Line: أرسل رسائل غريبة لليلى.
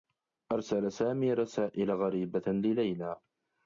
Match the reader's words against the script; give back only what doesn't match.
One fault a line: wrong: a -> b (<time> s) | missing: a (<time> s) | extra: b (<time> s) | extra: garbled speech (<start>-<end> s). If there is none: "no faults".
extra: سامي (0.9 s)